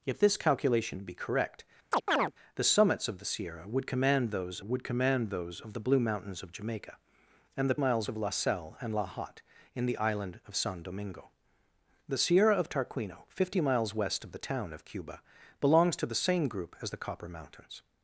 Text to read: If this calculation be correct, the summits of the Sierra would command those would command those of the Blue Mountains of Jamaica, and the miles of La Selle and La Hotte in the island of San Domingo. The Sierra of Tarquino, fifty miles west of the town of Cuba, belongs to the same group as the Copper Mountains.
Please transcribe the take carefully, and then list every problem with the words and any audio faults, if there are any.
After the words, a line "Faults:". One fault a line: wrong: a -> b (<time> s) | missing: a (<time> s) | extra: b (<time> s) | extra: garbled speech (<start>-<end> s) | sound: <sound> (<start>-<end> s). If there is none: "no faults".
If this calculation be correct, the summits of the Sierra would command those would command those of the Blue Mountains of Jamaica, and the miles of La Selle and La Hotte in the island of San Domingo. The Sierra of Tarquino, fifty miles west of the town of Cuba, belongs to the same group as the Copper Mountains.
Faults:
sound: chirp (1.9-2.3 s)